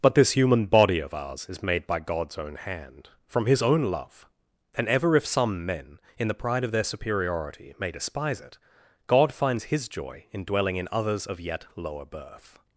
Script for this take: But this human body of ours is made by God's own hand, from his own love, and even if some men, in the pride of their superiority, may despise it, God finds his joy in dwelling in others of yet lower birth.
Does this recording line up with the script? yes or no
no